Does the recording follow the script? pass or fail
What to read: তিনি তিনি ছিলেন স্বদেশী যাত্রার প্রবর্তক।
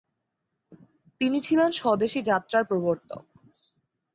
fail